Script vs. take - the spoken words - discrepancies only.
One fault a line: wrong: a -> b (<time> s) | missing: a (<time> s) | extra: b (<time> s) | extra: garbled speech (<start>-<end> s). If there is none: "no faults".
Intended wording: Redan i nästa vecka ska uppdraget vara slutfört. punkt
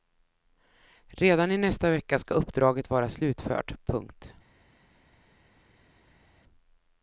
no faults